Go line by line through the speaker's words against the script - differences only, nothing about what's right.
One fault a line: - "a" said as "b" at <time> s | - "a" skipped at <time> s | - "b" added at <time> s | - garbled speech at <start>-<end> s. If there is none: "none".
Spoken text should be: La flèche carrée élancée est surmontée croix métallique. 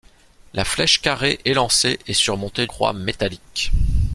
none